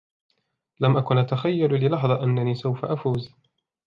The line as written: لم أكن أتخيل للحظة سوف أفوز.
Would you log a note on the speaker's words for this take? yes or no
yes